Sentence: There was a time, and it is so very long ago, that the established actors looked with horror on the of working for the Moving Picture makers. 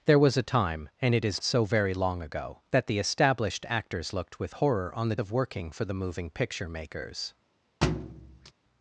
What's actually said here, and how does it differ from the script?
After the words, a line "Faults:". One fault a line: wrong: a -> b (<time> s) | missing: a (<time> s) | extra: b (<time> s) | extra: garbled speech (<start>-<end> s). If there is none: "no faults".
There was a time, and it is so very long ago, that the established actors looked with horror on the of working for the Moving Picture makers.
Faults:
no faults